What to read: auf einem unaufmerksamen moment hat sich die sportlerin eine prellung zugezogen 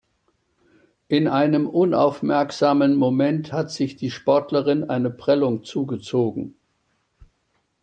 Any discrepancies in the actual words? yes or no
yes